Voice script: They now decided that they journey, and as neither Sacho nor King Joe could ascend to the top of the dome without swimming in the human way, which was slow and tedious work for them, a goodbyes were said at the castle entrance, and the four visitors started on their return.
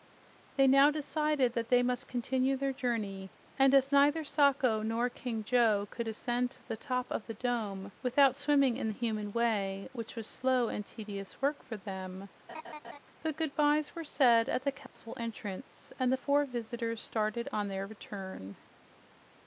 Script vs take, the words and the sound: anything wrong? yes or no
yes